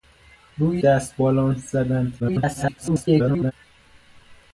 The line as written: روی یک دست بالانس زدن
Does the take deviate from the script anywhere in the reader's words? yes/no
yes